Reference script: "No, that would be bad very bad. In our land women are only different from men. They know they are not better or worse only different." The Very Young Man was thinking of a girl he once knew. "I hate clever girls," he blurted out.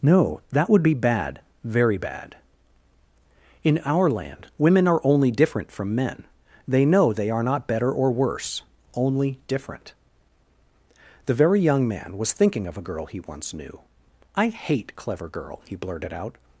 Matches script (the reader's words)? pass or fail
fail